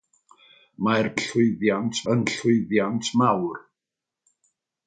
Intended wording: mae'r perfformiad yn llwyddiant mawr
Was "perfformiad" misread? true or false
true